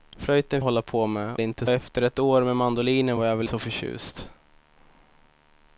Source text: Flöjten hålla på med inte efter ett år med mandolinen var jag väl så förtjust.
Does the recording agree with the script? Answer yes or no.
yes